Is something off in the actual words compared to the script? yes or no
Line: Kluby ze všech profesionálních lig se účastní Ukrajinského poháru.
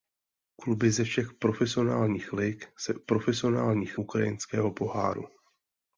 yes